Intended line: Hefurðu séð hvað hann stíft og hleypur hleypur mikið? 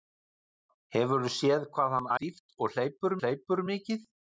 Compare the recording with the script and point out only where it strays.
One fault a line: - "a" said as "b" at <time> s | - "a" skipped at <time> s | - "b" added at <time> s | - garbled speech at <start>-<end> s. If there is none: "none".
none